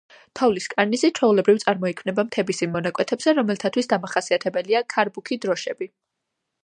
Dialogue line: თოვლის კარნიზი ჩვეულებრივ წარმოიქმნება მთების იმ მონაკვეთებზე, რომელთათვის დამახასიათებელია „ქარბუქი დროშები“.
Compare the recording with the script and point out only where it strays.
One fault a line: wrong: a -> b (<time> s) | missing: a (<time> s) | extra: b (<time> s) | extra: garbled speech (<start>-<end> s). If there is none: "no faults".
no faults